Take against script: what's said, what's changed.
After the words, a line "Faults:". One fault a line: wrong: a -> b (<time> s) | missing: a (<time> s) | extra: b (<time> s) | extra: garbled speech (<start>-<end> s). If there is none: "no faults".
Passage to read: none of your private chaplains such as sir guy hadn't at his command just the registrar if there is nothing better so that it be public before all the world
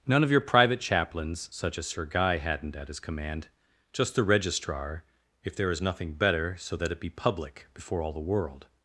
none of your private chaplains such as sir guy hadn't at his command just the registrar if there is nothing better so that it be public before all the world
Faults:
no faults